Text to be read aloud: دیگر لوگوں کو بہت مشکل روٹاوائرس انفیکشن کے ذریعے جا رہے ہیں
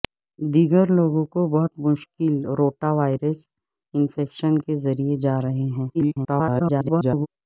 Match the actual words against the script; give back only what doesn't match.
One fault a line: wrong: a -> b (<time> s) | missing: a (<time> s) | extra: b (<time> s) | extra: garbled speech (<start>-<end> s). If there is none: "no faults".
extra: garbled speech (5.9-7.3 s)